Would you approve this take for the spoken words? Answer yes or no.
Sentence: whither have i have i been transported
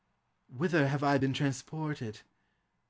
no